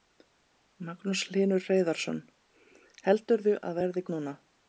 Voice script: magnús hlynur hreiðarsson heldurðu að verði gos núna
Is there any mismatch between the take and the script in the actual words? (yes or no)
yes